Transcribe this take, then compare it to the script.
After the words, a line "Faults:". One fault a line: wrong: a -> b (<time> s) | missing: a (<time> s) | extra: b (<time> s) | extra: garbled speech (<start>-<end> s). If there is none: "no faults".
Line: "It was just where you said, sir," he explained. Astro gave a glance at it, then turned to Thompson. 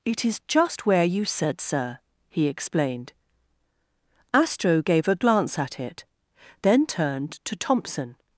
"It is just where you said, sir," he explained. Astro gave a glance at it, then turned to Thompson.
Faults:
wrong: was -> is (0.2 s)